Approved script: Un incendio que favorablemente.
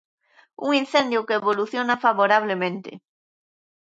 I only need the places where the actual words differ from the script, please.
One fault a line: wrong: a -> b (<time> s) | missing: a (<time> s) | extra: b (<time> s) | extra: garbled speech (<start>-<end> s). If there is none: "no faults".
extra: evoluciona (1.4 s)